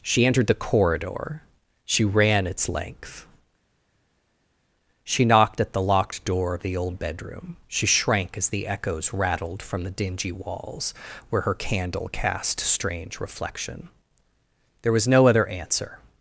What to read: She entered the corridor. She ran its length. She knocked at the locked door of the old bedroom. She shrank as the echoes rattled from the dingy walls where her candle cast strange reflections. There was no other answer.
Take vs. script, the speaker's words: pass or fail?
fail